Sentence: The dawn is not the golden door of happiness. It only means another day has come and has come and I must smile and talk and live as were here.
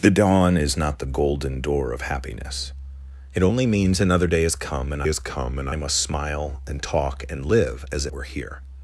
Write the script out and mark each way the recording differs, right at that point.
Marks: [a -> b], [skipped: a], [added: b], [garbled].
The dawn is not the golden door of happiness. It only means another day has come and has come and I must smile and talk and live as were here.